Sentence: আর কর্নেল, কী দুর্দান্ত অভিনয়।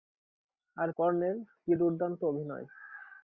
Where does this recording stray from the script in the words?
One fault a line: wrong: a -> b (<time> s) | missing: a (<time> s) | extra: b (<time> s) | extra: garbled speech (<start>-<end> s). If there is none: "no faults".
no faults